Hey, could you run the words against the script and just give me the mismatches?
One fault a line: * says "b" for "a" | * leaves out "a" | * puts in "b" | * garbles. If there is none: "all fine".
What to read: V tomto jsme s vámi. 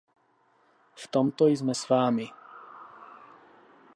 all fine